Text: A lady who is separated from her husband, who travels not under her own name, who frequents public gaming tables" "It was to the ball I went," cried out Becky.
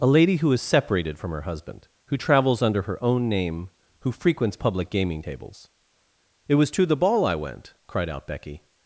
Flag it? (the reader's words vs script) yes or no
yes